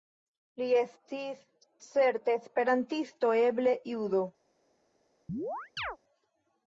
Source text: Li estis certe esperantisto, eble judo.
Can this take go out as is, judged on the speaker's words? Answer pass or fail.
pass